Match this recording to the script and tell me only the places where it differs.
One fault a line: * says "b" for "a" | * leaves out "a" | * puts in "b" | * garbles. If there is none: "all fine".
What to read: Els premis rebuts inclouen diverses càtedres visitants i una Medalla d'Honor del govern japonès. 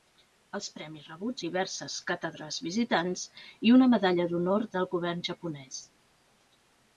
* leaves out "inclouen"